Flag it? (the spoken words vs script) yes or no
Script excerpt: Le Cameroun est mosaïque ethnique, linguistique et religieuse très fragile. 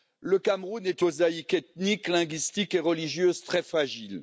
no